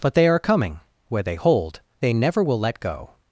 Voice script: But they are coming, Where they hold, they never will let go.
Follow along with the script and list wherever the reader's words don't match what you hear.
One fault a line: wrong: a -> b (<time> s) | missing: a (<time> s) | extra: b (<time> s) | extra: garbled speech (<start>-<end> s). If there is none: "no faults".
no faults